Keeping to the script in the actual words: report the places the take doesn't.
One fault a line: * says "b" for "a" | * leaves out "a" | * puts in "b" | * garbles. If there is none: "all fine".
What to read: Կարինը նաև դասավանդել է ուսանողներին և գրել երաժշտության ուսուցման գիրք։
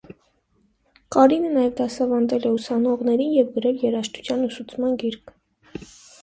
all fine